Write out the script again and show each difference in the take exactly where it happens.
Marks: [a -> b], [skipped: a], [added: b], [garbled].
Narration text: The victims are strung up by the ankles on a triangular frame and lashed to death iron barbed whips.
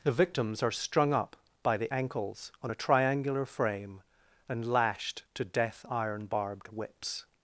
The victims are strung up by the ankles on a triangular frame and lashed to death iron barbed whips.